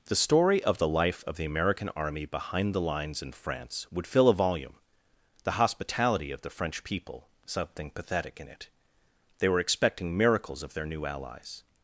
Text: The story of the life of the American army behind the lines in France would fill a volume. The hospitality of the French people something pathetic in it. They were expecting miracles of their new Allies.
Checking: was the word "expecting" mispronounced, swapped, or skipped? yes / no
no